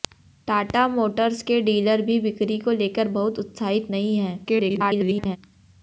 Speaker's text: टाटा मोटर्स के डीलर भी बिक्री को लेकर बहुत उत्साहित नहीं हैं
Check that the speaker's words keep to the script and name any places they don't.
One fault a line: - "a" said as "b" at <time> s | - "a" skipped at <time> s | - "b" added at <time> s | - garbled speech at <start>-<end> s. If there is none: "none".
- garbled speech at 4.4-5.4 s